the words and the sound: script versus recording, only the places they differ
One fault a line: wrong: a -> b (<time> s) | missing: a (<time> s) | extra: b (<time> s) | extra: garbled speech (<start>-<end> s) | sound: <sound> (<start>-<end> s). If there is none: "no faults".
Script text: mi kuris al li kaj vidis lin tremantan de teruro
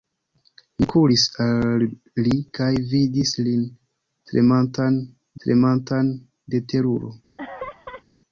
extra: tremantan (5.5 s)
sound: laugh (7.4-8.0 s)